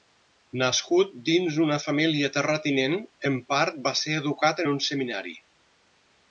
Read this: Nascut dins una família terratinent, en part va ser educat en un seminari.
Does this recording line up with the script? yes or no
yes